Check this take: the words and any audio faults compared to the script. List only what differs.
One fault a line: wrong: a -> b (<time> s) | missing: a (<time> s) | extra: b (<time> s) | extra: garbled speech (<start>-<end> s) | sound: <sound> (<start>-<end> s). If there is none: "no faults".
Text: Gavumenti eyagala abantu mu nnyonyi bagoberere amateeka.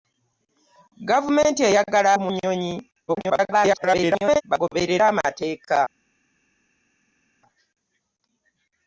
missing: abantu (2.1 s)
extra: garbled speech (3.1-4.4 s)